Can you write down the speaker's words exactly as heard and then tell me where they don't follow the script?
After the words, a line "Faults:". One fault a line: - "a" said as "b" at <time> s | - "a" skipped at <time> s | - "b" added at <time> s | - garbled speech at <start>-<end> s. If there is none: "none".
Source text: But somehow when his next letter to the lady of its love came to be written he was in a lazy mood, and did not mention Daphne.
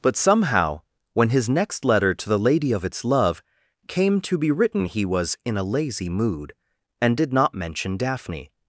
But somehow when his next letter to the lady of its love came to be written he was in a lazy mood, and did not mention Daphne.
Faults:
none